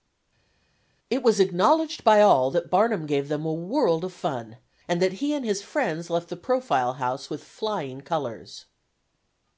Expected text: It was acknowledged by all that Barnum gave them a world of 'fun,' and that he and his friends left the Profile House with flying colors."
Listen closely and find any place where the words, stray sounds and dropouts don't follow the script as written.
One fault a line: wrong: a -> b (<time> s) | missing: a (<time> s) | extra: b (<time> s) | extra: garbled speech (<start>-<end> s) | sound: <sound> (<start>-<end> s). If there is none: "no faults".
no faults